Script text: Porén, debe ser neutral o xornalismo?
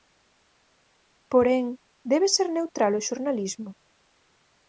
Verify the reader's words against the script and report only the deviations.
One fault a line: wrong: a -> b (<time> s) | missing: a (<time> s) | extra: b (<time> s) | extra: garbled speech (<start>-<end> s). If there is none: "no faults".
no faults